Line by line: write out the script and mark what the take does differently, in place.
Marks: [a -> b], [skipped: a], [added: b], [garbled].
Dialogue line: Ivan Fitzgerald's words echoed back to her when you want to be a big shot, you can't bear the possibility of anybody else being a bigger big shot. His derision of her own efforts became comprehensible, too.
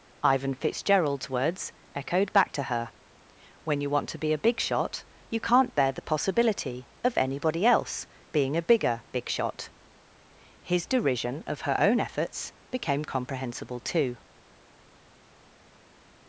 Ivan Fitzgerald's words echoed back to her when you want to be a big shot, you can't bear the possibility of anybody else being a bigger big shot. His derision of her own efforts became comprehensible, too.